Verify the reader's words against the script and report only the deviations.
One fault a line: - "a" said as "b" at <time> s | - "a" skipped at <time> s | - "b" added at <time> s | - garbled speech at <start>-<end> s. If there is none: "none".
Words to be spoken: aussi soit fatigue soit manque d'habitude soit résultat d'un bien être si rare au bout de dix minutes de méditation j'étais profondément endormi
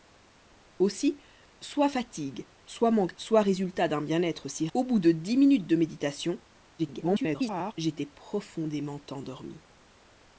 - "d'habitude" skipped at 3.1 s
- "rare" skipped at 4.7 s
- garbled speech at 6.8-7.7 s